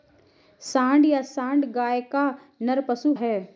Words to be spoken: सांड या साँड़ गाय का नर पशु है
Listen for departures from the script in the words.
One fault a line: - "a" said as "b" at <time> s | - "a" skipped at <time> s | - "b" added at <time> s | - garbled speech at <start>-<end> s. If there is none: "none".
none